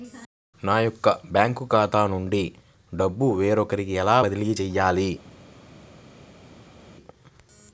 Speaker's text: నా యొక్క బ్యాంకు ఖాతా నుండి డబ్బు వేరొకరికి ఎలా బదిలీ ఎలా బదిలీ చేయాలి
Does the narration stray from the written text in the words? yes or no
yes